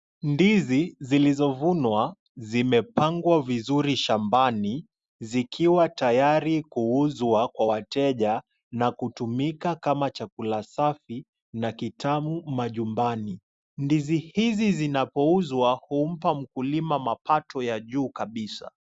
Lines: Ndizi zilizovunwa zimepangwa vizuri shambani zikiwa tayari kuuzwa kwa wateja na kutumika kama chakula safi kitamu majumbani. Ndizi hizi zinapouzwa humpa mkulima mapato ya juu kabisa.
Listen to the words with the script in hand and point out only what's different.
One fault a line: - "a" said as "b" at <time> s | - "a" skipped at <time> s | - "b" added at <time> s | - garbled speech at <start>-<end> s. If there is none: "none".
- "na" added at 11.5 s